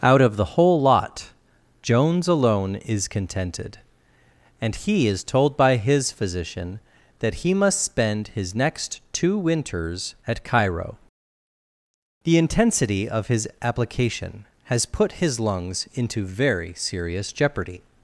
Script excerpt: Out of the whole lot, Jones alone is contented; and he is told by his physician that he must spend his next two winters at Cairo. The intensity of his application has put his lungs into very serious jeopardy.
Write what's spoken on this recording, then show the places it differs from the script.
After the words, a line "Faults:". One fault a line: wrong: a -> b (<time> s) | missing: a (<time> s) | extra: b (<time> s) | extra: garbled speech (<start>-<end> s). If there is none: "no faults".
Out of the whole lot, Jones alone is contented; and he is told by his physician that he must spend his next two winters at Cairo. The intensity of his application has put his lungs into very serious jeopardy.
Faults:
no faults